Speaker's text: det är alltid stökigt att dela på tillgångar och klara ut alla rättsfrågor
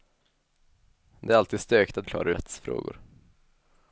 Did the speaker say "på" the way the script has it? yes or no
no